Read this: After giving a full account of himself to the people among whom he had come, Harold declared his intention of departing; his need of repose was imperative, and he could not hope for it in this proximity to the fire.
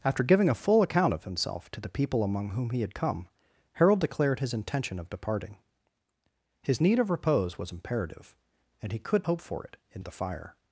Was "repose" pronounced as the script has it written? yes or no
yes